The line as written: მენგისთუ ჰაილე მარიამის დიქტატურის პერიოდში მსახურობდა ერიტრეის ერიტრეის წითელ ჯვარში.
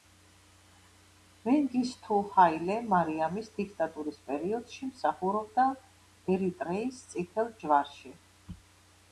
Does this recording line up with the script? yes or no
no